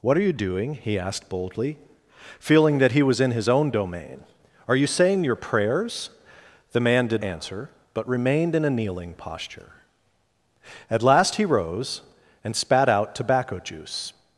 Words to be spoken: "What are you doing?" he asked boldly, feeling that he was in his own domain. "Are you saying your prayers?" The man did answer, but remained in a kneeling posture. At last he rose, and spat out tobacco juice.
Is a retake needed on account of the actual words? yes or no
no